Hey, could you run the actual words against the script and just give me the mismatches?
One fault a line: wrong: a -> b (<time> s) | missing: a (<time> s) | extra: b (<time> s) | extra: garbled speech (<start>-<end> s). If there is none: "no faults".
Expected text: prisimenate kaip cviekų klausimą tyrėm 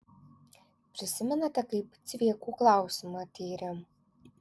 no faults